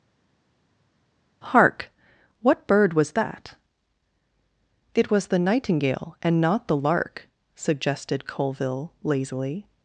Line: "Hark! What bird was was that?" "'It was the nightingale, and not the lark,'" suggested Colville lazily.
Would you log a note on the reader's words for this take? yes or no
yes